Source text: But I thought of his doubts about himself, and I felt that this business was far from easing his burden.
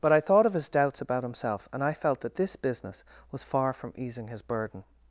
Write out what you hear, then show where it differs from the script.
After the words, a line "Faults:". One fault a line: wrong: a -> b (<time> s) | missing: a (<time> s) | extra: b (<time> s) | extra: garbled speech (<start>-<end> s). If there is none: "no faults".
But I thought of his doubts about himself, and I felt that this business was far from easing his burden.
Faults:
no faults